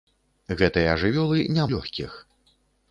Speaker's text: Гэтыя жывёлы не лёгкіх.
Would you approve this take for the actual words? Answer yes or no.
yes